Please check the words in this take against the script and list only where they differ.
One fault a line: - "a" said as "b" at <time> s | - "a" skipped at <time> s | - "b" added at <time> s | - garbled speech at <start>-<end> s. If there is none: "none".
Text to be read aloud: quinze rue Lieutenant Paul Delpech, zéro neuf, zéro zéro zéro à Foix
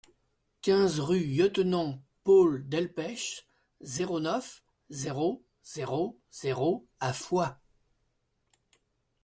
none